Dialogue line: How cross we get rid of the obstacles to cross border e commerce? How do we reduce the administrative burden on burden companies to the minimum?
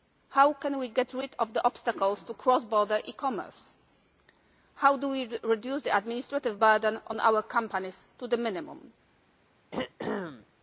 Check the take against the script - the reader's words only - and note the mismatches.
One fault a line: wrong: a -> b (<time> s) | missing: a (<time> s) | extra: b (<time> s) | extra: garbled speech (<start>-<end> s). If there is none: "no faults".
wrong: cross -> can (0.5 s)
wrong: burden -> our (7.2 s)